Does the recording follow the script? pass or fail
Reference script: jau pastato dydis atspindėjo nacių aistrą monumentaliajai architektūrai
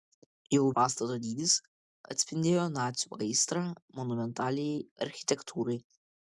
pass